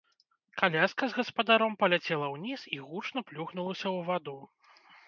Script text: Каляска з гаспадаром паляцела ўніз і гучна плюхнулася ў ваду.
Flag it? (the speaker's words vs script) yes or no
no